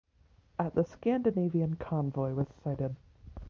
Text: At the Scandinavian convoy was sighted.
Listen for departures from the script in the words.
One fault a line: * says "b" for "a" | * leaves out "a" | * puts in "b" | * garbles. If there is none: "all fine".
all fine